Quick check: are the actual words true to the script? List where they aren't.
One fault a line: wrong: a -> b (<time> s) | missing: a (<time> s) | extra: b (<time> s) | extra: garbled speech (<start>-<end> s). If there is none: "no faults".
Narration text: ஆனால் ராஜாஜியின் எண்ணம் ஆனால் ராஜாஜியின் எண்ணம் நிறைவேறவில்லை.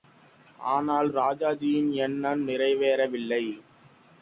missing: ஆனால் ராஜாஜியின் எண்ணம் (2.5 s)